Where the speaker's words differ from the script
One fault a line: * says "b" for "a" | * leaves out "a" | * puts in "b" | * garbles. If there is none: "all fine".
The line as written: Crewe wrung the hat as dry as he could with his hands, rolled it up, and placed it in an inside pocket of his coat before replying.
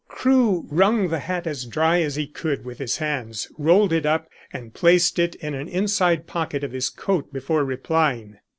all fine